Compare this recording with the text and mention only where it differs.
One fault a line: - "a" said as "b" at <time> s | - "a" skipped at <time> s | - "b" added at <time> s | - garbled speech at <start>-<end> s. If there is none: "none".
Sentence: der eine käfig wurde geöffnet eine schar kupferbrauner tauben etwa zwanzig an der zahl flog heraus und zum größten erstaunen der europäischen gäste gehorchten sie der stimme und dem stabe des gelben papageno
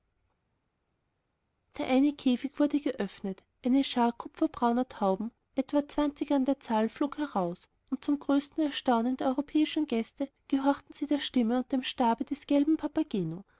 none